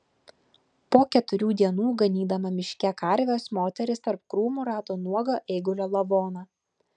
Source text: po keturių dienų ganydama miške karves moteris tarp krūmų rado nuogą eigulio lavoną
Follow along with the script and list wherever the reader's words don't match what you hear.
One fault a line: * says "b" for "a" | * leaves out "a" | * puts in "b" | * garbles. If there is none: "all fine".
all fine